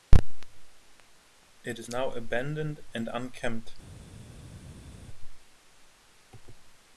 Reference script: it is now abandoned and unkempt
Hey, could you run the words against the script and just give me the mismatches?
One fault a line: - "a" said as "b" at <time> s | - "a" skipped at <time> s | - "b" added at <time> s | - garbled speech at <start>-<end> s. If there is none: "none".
none